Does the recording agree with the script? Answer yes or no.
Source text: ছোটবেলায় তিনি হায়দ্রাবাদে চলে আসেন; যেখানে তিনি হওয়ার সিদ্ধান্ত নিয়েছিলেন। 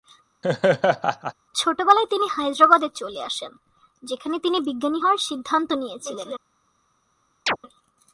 no